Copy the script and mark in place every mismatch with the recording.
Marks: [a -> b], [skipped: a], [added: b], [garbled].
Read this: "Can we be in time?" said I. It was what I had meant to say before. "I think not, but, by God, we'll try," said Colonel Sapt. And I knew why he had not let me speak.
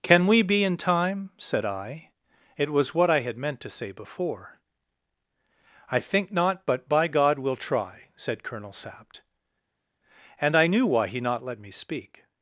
"Can we be in time?" said I. It was what I had meant to say before. "I think not, but, by God, we'll try," said Colonel Sapt. And I knew why he [skipped: had] not let me speak.